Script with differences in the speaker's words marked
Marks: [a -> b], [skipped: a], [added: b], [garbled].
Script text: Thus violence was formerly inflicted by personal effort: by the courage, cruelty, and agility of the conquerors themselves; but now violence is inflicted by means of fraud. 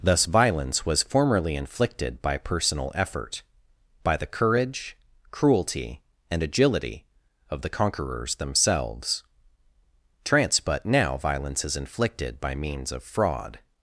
Thus violence was formerly inflicted by personal effort: by the courage, cruelty, and agility of the conquerors themselves; [added: trance] but now violence is inflicted by means of fraud.